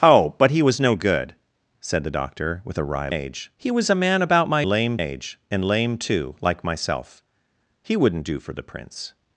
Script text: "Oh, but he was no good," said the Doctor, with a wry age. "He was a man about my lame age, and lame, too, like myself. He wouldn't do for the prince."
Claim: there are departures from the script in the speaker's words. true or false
false